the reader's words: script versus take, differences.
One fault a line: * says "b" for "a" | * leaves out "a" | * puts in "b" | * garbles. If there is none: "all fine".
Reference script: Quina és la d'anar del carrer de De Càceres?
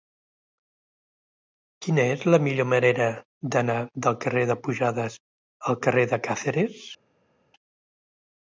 * puts in "millor manera"
* puts in "Pujades al carrer"